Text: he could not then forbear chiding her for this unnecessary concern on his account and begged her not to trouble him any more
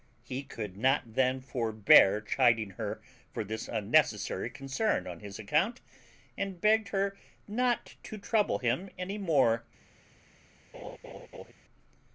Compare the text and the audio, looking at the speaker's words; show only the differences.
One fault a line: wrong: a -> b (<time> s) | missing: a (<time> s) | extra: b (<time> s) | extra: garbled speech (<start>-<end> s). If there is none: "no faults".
no faults